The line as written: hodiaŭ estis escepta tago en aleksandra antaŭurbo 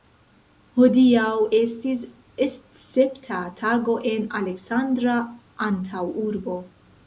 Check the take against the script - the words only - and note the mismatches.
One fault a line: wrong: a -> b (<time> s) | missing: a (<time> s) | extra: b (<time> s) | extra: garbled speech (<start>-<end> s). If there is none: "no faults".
no faults